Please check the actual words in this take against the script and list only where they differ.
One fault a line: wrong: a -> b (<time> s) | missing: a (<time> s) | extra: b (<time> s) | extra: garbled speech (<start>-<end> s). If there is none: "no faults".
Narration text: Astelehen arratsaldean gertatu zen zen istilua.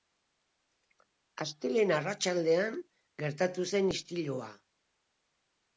missing: zen (3.9 s)